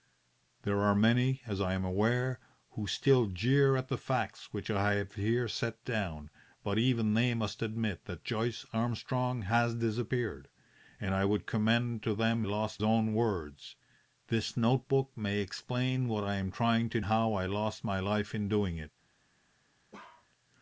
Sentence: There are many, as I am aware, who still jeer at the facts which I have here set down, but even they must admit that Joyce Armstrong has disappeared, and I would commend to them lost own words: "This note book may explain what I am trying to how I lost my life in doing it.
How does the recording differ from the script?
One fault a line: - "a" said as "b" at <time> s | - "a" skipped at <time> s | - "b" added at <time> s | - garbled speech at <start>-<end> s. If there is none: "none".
none